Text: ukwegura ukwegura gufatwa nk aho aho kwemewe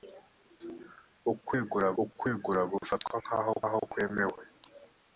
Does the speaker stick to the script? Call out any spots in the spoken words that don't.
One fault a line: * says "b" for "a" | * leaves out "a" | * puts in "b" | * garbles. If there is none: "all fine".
all fine